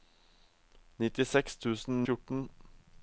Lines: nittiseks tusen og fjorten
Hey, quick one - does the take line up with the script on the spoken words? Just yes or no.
yes